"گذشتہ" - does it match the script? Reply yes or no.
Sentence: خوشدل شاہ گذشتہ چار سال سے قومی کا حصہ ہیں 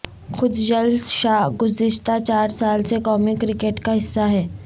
yes